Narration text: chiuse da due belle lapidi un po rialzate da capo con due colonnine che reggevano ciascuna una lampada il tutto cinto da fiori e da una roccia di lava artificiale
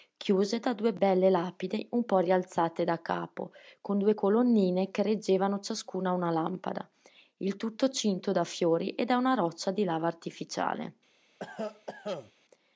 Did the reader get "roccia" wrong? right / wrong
right